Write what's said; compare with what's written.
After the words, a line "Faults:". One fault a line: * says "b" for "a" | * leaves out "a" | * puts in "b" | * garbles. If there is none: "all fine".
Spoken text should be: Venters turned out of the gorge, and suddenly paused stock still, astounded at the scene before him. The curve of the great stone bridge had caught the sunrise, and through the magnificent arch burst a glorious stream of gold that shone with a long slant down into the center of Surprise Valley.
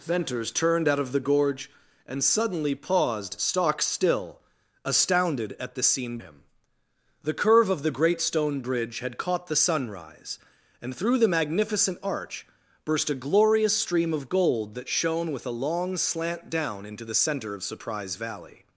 Venters turned out of the gorge, and suddenly paused stock still, astounded at the scene him. The curve of the great stone bridge had caught the sunrise, and through the magnificent arch burst a glorious stream of gold that shone with a long slant down into the center of Surprise Valley.
Faults:
* leaves out "before"